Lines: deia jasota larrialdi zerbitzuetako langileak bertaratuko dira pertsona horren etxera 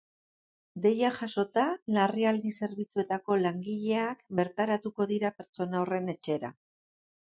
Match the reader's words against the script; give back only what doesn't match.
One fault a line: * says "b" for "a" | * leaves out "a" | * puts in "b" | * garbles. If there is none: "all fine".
all fine